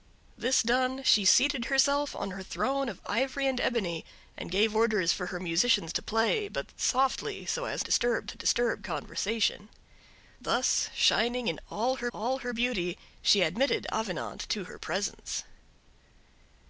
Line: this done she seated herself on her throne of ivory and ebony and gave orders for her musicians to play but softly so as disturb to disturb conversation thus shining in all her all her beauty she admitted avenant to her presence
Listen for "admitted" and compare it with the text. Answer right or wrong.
right